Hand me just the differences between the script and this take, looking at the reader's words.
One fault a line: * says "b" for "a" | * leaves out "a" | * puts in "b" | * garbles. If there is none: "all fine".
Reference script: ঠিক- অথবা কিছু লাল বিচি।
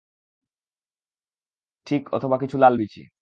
all fine